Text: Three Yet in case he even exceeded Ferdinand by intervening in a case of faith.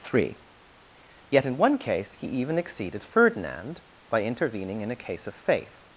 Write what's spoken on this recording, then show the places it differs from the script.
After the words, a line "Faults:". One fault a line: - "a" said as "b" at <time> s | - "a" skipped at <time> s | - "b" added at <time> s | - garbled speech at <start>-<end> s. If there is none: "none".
Three Yet in one case he even exceeded Ferdinand by intervening in a case of faith.
Faults:
- "one" added at 1.6 s